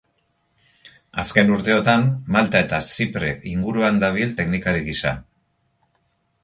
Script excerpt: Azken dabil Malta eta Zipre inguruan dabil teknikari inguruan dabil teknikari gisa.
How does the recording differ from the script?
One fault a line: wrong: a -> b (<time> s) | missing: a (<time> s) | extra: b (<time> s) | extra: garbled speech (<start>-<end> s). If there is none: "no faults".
wrong: dabil -> urteotan (1.6 s)
missing: inguruan dabil teknikari (4.9 s)